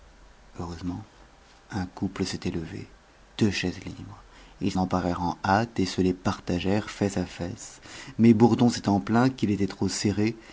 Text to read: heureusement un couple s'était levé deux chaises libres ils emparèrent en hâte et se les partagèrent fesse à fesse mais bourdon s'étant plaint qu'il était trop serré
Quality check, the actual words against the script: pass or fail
pass